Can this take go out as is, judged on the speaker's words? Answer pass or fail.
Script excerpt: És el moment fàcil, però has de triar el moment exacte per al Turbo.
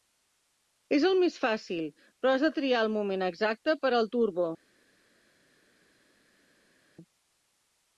fail